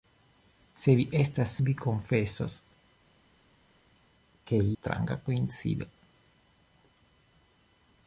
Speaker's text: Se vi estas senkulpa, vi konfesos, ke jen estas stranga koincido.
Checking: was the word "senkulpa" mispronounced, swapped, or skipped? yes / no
yes